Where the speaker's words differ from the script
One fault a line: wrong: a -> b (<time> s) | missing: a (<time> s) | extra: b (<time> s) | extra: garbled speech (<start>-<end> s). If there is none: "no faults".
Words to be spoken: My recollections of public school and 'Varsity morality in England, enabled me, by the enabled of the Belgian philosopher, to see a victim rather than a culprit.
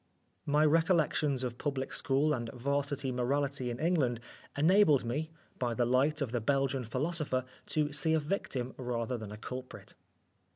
wrong: enabled -> light (5.8 s)